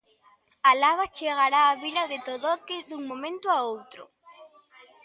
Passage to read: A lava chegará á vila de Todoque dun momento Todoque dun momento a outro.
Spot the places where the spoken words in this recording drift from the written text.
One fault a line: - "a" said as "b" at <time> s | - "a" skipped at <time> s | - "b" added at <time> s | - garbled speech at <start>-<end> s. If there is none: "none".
- "Todoque dun momento" skipped at 3.5 s